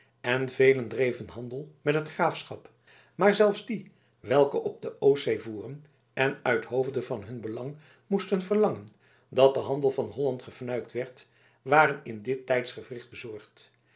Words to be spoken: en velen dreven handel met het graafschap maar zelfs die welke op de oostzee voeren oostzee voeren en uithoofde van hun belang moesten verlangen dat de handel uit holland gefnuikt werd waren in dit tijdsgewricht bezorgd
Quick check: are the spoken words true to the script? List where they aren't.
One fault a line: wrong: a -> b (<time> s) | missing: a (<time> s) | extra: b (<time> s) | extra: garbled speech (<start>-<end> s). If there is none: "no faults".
missing: oostzee voeren (5.8 s)
wrong: uit -> van (9.9 s)